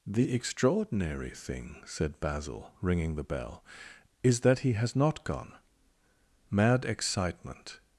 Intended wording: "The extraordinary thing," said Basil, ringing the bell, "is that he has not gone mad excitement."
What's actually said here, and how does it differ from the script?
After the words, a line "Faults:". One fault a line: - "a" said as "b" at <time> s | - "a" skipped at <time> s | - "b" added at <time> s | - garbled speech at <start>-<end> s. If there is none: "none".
"The extraordinary thing," said Basil, ringing the bell, "is that he has not gone mad excitement."
Faults:
none